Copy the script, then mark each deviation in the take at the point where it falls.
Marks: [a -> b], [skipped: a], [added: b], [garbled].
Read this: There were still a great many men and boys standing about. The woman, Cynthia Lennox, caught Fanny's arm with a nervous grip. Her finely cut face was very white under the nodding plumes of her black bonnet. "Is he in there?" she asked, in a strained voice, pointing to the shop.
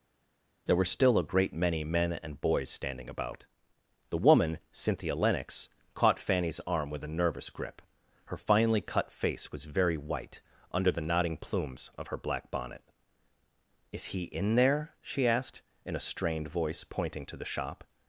There were still a great many men and boys standing about. The woman, Cynthia Lennox, caught Fanny's arm with a nervous grip. Her finely cut face was very white under the nodding plumes of her black bonnet. "Is he in there?" she asked, in a strained voice, pointing to the shop.